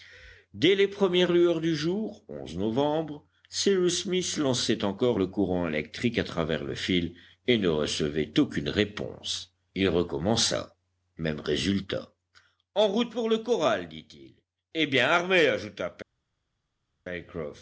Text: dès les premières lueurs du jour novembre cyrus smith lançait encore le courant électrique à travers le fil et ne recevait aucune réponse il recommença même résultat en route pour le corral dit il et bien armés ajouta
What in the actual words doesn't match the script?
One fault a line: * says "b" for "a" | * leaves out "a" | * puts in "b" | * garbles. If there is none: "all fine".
all fine